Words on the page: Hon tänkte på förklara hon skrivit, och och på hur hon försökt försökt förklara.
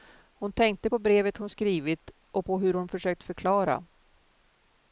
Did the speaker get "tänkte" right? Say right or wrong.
right